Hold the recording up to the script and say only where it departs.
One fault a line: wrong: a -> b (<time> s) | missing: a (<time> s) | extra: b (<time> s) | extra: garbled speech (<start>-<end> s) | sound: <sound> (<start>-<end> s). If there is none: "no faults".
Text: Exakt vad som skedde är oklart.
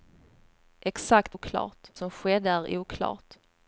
wrong: vad -> oklart (1.3 s)